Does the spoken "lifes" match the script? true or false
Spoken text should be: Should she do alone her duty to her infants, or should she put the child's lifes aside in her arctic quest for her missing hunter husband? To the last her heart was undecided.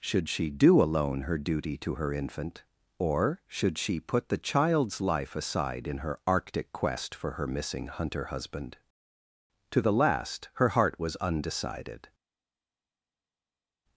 false